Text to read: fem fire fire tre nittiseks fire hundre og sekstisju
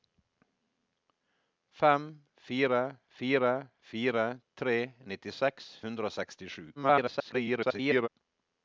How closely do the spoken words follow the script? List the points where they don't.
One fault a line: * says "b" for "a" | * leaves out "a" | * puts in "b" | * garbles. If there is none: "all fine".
* puts in "fire"
* leaves out "fire"
* garbles